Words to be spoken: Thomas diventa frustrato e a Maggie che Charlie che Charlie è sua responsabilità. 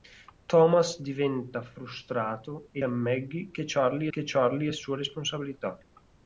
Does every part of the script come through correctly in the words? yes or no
yes